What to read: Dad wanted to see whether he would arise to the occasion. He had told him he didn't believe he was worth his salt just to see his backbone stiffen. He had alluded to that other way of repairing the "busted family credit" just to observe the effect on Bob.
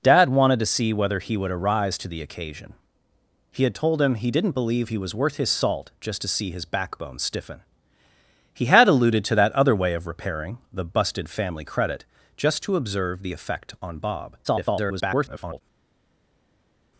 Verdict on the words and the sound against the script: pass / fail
fail